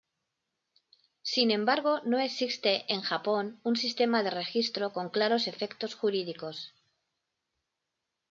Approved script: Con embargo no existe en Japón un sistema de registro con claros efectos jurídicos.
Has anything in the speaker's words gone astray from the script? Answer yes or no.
yes